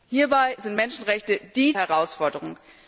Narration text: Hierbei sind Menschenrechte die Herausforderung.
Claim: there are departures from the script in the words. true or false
false